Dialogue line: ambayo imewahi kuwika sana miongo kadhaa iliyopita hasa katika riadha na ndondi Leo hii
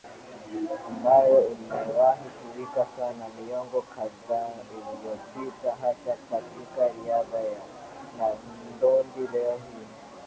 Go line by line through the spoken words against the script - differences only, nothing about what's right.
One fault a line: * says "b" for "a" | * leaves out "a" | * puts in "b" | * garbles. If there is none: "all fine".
all fine